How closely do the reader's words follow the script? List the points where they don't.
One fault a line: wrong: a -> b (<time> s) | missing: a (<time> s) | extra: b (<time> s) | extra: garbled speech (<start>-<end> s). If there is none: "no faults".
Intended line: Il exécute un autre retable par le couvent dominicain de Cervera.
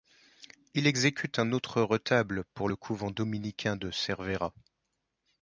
wrong: par -> pour (2.5 s)